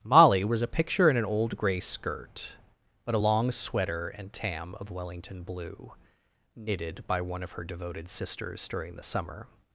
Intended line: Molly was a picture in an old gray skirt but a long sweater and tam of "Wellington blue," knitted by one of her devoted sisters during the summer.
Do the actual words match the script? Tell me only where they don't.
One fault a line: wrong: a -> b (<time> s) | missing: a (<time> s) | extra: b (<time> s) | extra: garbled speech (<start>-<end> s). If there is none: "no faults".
no faults